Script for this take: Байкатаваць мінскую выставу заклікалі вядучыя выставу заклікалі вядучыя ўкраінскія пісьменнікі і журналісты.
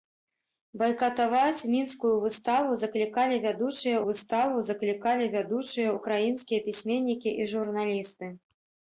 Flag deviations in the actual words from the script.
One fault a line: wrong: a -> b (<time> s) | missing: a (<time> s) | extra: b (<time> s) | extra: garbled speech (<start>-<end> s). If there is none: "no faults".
no faults